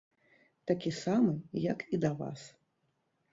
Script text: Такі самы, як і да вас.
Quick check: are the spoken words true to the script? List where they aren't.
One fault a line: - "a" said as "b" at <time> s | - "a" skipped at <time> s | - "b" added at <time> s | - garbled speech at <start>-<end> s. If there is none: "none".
none